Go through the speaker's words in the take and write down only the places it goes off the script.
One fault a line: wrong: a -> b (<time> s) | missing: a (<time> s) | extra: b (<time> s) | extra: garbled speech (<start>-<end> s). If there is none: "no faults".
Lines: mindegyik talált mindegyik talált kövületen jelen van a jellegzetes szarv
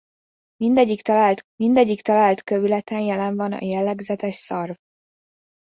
no faults